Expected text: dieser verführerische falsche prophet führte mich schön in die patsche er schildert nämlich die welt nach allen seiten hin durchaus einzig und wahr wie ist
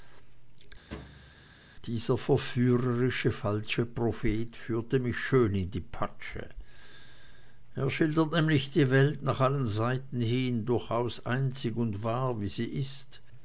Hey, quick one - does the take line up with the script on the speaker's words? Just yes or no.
no